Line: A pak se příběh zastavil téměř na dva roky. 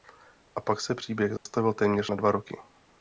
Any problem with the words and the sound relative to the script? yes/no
yes